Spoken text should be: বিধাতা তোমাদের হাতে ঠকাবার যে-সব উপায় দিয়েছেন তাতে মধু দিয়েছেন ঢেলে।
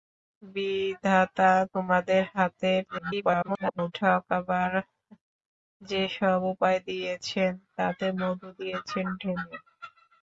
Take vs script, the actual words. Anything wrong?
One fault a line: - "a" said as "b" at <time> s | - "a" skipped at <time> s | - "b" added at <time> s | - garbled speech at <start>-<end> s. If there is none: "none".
- garbled speech at 2.9-3.9 s